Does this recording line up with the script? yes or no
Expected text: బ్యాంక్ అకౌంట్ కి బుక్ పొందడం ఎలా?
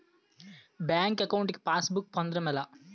no